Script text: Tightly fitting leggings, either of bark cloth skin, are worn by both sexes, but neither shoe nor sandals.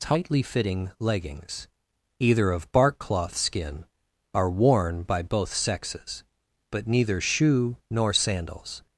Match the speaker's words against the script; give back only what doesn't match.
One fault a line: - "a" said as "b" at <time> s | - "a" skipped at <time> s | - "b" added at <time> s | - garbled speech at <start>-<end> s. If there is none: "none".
none